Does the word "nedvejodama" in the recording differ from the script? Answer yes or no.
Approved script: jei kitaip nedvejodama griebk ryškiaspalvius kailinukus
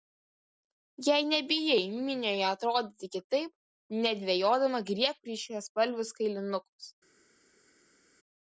no